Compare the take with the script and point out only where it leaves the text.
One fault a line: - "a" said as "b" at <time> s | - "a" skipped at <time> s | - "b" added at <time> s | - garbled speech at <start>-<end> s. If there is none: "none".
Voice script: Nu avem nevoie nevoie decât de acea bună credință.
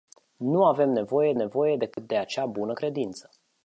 none